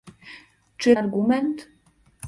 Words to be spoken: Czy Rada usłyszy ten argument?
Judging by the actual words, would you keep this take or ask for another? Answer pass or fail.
fail